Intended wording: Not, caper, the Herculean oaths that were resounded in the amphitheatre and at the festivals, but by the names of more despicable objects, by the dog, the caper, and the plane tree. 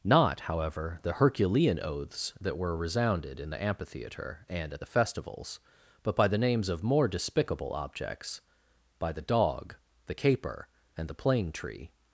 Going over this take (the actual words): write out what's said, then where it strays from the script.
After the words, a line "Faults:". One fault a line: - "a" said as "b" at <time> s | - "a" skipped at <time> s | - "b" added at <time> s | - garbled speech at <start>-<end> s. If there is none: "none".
Not, however, the Herculean oaths that were resounded in the amphitheatre and at the festivals, but by the names of more despicable objects, by the dog, the caper, and the plane tree.
Faults:
- "caper" said as "however" at 0.4 s